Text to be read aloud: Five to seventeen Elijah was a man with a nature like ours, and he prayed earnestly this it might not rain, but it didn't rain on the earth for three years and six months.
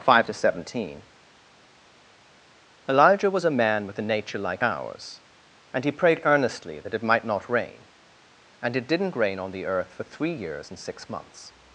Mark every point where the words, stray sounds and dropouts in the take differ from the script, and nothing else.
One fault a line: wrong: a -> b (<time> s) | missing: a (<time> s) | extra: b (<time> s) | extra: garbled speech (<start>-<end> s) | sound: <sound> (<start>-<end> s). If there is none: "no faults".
wrong: this -> that (6.8 s)
wrong: but -> and (8.6 s)